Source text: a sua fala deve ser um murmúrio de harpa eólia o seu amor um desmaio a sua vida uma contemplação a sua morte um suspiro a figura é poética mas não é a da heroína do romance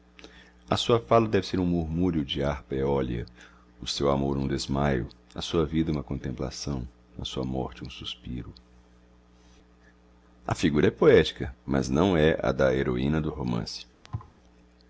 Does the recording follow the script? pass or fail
pass